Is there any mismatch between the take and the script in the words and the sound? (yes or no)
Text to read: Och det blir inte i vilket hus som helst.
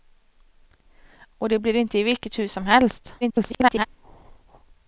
yes